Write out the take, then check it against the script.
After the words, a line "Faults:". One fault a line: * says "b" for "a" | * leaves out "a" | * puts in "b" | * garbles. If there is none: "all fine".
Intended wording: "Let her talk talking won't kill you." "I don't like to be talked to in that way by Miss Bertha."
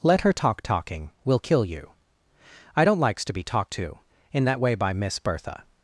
"Let her talk talking will kill you." "I don't likes to be talked to in that way by Miss Bertha."
Faults:
* says "will" for "won't"
* says "likes" for "like"